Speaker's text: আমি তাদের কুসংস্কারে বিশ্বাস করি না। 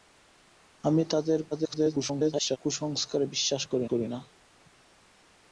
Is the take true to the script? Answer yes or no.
no